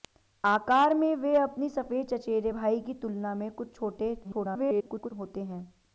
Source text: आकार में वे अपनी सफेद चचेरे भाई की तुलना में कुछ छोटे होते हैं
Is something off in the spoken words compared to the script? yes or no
yes